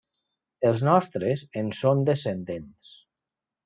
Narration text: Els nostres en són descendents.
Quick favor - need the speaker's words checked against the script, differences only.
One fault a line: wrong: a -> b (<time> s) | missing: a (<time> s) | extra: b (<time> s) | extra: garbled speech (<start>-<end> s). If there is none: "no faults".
no faults